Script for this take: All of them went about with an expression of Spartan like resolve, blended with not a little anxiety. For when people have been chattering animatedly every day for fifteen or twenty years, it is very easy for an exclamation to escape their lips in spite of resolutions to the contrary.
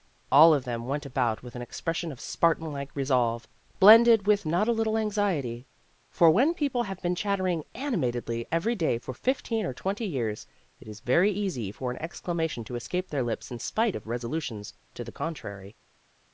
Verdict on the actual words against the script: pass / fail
pass